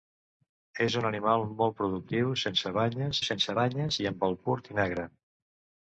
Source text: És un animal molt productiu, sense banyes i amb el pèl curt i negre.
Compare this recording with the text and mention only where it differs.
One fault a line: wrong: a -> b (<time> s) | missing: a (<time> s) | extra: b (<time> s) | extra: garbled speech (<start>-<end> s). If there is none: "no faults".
extra: sense banyes (3.3 s)
missing: pèl (4.4 s)